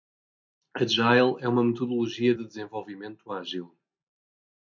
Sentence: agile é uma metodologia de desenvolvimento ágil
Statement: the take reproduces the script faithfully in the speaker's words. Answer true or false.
true